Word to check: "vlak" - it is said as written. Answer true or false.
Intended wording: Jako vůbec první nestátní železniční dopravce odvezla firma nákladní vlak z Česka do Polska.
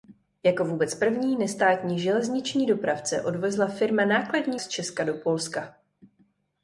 false